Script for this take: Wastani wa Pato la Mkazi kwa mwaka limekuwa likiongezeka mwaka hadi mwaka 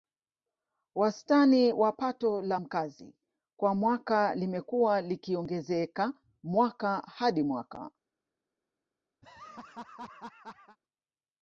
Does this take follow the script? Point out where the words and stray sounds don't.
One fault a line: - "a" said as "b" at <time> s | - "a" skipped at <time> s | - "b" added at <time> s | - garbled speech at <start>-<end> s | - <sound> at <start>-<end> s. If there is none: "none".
- laugh at 9.2-10.8 s